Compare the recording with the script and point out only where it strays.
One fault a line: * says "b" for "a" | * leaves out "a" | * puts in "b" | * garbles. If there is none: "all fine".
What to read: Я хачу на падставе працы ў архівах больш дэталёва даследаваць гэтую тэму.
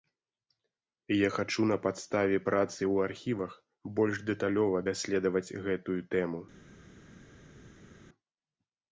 all fine